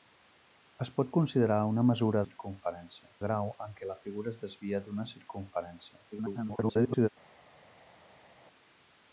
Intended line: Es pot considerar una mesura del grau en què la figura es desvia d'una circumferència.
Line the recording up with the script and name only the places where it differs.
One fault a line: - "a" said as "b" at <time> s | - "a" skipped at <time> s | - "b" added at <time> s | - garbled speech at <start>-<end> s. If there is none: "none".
- "del" said as "circumferència" at 2.2 s
- garbled speech at 6.1-7.1 s